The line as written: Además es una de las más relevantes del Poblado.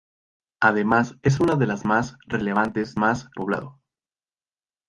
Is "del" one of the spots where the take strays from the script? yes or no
yes